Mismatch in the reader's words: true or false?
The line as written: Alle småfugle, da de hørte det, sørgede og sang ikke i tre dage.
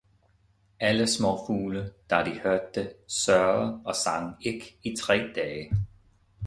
false